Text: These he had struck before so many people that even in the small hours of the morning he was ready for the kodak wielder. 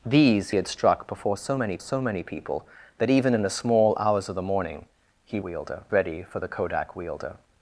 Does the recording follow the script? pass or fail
fail